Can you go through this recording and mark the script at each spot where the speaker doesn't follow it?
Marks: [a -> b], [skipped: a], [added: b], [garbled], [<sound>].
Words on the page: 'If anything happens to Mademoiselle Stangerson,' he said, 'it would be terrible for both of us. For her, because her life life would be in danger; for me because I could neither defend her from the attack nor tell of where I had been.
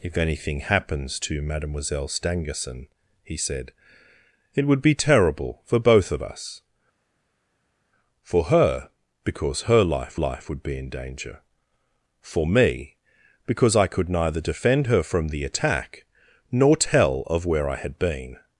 'If anything happens to Mademoiselle Stangerson,' he said, 'it would be terrible for both of us. For her, because her life life would be in danger; for me because I could neither defend her from the attack nor tell of where I had been.